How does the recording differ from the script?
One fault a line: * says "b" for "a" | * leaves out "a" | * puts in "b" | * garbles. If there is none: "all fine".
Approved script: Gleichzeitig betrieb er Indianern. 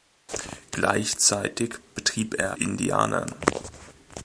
all fine